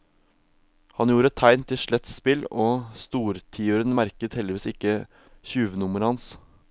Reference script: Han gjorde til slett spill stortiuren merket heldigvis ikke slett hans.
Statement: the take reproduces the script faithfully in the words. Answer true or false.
false